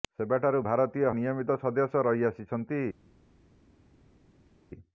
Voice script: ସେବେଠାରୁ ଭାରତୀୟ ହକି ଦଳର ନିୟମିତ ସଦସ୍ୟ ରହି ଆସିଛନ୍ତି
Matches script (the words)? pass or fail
fail